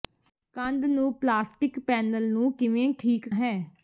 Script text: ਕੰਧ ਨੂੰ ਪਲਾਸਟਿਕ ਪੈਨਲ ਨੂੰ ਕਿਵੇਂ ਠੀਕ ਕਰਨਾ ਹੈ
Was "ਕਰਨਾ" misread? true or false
true